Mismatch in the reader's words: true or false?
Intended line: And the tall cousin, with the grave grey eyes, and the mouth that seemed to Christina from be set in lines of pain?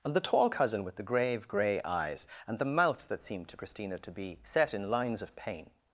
true